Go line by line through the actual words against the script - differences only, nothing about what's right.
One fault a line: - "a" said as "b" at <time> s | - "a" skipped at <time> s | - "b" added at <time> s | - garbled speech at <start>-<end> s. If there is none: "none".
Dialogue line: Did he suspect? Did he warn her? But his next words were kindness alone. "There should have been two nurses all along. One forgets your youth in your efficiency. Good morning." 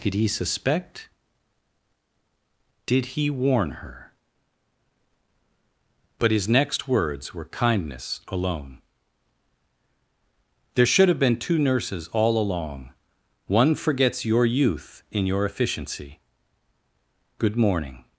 none